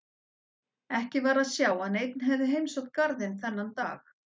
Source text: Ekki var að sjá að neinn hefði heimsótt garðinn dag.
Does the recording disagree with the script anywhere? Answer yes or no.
yes